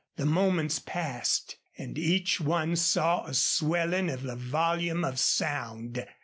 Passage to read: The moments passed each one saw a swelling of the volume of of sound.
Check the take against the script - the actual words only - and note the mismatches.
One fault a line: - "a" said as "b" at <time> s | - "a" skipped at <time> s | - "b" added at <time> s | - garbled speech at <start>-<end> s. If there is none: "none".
- "and" added at 1.8 s
- "of" skipped at 5.2 s